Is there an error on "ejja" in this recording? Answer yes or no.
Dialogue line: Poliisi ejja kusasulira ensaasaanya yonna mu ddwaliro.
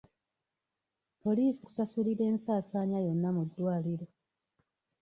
yes